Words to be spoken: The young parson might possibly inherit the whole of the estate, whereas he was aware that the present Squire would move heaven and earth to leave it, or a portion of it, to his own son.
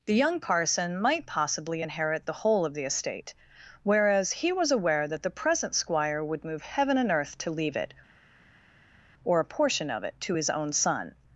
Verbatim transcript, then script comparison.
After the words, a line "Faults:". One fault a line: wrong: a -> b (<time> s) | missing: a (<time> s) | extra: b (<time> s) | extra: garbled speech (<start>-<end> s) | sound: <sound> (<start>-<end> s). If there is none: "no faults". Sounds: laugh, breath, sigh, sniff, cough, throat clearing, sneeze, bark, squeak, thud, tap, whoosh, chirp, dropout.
The young parson might possibly inherit the whole of the estate, whereas he was aware that the present Squire would move heaven and earth to leave it, or a portion of it, to his own son.
Faults:
no faults